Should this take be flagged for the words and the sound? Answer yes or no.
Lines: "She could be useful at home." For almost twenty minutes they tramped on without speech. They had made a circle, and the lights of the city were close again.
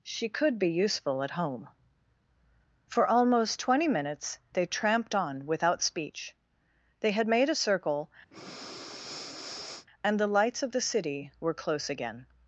yes